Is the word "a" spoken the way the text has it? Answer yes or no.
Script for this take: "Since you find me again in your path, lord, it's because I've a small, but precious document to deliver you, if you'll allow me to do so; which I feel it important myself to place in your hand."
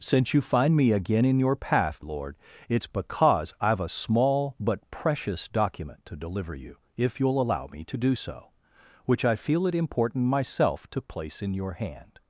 yes